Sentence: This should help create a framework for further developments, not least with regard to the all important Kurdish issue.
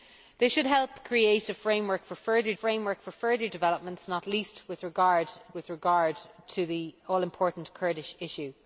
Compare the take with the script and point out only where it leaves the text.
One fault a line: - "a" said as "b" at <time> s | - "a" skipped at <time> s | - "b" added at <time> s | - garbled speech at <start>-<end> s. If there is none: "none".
- "framework for further" added at 2.5 s
- "with regard" added at 5.5 s